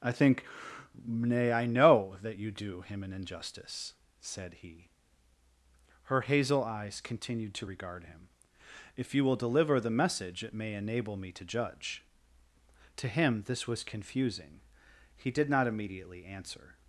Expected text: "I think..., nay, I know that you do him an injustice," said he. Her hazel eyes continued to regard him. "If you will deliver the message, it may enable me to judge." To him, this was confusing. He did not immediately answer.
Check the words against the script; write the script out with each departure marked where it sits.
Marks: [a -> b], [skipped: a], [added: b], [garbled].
"I think..., nay, I know that you do him an injustice," said he. Her hazel eyes continued to regard him. "If you will deliver the message, it may enable me to judge." To him, this was confusing. He did not immediately answer.